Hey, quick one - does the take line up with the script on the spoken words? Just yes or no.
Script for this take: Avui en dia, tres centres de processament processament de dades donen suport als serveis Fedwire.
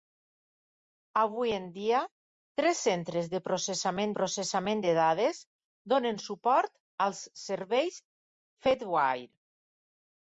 yes